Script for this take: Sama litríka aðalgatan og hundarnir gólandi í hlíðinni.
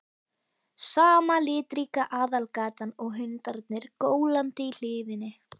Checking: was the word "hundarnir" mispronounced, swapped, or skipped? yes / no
no